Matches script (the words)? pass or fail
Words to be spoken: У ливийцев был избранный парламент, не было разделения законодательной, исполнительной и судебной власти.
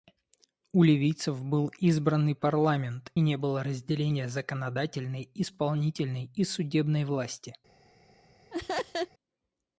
pass